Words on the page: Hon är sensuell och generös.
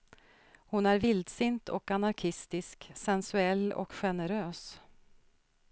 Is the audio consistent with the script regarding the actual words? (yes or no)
no